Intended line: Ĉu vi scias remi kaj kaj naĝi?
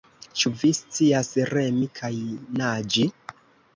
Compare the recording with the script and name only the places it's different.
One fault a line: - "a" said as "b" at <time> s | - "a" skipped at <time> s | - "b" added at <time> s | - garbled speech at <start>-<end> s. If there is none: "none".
- "kaj" skipped at 2.1 s